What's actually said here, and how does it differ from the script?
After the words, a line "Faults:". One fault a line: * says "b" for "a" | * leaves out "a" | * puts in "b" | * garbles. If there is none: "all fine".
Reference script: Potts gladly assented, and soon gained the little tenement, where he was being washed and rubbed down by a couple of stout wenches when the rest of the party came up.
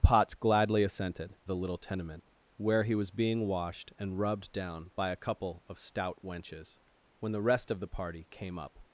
Potts gladly assented, the little tenement, where he was being washed and rubbed down by a couple of stout wenches when the rest of the party came up.
Faults:
* leaves out "and soon gained"